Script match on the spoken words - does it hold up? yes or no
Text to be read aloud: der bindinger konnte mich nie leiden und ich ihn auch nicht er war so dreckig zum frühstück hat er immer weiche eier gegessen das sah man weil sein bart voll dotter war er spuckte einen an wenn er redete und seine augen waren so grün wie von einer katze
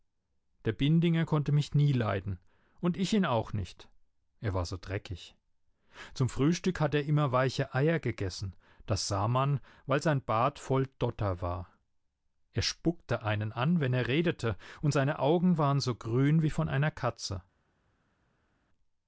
yes